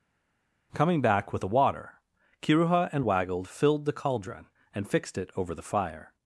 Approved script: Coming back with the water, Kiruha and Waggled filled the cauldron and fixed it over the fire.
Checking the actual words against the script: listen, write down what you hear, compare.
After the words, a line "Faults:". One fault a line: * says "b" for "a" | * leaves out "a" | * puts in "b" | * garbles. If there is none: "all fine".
Coming back with the water, Kiruha and Waggled filled the cauldron and fixed it over the fire.
Faults:
all fine